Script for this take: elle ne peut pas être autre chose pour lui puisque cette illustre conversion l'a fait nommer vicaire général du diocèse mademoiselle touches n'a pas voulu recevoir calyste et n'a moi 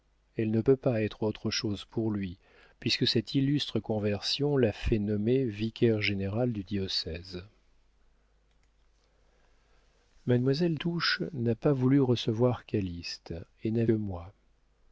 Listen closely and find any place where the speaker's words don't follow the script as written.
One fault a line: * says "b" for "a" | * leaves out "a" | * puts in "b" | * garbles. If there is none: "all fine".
all fine